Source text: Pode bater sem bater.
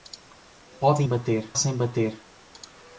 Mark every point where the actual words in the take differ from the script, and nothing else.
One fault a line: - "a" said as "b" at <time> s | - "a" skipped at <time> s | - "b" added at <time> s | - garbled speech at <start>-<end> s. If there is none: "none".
none